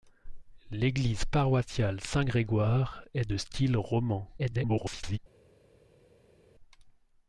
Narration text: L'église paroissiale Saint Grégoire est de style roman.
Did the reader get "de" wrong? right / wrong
right